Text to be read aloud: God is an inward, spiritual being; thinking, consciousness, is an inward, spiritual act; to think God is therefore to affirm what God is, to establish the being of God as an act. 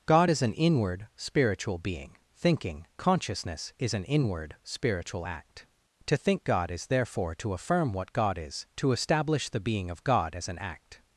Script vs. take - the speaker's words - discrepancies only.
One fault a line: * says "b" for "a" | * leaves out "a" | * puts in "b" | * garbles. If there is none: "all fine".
all fine